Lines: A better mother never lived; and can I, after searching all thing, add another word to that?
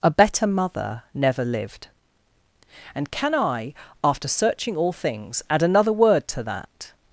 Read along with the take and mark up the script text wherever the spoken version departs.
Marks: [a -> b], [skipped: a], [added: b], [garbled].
A better mother never lived; and can I, after searching all [thing, -> things] add another word to that?